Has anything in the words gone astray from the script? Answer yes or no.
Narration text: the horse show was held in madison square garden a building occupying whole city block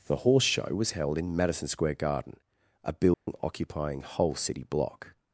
no